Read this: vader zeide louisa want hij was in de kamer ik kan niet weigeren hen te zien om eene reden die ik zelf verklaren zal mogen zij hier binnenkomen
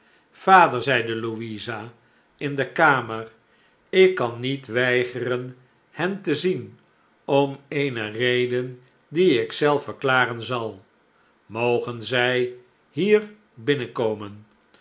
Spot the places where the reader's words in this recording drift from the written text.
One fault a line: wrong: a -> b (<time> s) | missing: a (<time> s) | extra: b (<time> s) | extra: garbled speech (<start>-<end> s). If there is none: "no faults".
missing: want hij was (1.9 s)